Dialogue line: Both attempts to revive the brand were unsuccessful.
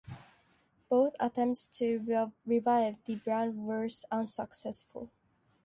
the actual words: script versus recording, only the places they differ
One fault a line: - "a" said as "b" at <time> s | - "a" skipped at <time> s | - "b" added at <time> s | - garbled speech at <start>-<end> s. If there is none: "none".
none